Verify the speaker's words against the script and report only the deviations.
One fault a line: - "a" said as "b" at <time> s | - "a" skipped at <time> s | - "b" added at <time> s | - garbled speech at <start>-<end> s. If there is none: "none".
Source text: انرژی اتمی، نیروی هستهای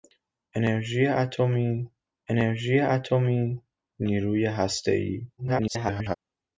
- "انرژی اتمی" added at 2.3 s
- garbled speech at 5.4-6.2 s